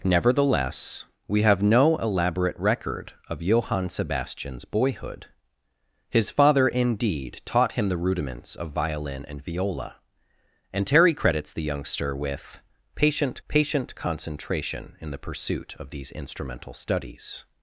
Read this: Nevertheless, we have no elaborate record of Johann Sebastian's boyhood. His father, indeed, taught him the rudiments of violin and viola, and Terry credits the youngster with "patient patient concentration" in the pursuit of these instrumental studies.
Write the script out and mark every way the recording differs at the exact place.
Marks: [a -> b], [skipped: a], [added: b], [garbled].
Nevertheless, we have no elaborate record of Johann Sebastian's boyhood. His father, indeed, taught him the rudiments of violin and viola, and Terry credits the youngster with "patient patient concentration" in the pursuit of these instrumental studies.